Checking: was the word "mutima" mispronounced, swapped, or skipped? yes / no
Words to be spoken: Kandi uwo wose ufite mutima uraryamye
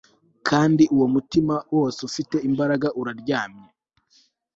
yes